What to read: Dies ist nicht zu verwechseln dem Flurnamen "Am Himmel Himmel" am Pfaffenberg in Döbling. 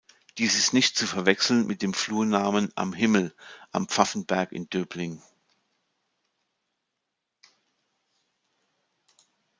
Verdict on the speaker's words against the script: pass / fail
fail